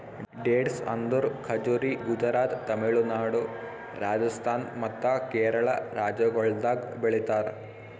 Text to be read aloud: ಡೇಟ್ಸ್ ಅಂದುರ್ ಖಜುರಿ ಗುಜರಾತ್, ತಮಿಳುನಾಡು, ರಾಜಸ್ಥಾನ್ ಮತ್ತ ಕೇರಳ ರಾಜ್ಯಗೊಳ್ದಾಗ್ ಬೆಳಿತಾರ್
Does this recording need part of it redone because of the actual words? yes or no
no